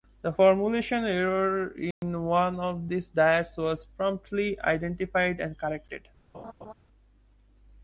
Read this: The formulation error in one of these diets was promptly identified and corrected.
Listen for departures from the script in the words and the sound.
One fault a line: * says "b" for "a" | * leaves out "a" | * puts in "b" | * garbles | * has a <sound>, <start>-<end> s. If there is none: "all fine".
* has a dropout, 1.9-2.0 s
* has a laugh, 6.3-6.7 s